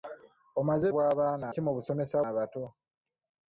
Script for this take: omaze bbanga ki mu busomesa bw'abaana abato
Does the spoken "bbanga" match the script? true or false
false